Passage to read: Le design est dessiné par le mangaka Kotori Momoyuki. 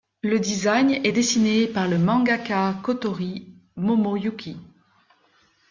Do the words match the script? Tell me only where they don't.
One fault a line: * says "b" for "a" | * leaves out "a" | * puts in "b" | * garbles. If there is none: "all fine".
all fine